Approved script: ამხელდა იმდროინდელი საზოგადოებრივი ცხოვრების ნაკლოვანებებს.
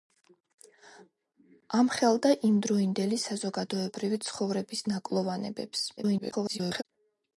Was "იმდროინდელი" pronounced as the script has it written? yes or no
yes